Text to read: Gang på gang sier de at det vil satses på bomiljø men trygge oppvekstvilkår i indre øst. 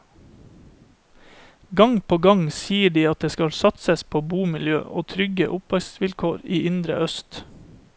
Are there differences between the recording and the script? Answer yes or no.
yes